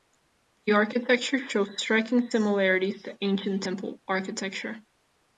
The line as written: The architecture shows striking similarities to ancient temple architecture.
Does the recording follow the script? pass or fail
pass